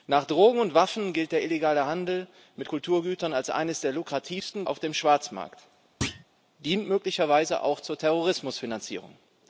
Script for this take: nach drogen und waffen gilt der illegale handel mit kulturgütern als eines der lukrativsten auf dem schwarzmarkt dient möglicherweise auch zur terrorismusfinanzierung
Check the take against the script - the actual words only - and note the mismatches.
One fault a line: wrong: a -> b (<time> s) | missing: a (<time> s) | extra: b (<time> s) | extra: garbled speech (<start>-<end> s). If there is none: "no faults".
no faults